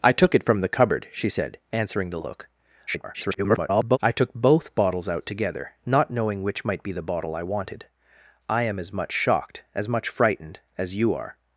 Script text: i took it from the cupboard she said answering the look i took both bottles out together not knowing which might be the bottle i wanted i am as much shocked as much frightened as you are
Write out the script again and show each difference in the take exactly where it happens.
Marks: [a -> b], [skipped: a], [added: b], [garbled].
i took it from the cupboard she said answering the look [garbled] i took both bottles out together not knowing which might be the bottle i wanted i am as much shocked as much frightened as you are